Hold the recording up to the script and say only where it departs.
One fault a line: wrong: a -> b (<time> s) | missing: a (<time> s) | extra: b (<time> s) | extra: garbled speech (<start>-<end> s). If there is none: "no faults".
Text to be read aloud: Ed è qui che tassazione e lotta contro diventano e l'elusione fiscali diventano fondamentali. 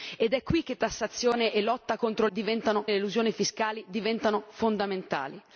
no faults